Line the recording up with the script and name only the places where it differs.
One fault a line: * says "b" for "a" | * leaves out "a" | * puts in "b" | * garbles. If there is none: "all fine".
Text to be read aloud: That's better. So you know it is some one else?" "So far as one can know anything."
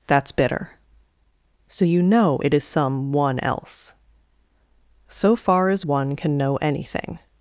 * says "bitter" for "better"